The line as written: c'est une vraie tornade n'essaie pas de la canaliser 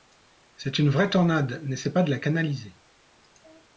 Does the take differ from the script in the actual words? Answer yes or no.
no